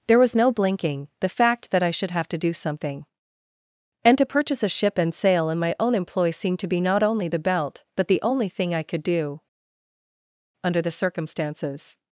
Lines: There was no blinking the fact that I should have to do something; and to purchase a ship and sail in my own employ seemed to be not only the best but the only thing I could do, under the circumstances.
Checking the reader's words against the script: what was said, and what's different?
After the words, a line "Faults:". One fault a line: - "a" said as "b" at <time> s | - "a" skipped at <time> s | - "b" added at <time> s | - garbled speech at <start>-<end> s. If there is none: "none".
There was no blinking the fact that I should have to do something; and to purchase a ship and sail in my own employ seemed to be not only the belt but the only thing I could do, under the circumstances.
Faults:
- "best" said as "belt" at 7.4 s